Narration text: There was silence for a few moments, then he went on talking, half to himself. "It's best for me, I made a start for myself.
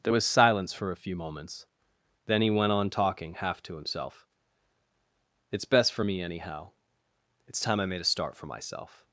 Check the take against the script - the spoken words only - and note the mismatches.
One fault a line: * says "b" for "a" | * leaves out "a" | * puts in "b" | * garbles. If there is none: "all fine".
* puts in "anyhow It's time"